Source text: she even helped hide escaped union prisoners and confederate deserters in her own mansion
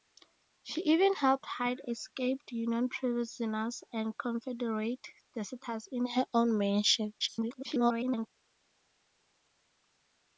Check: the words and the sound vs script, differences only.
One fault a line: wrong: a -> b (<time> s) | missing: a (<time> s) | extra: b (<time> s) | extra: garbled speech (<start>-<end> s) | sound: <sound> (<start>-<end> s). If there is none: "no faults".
extra: garbled speech (7.2-8.3 s)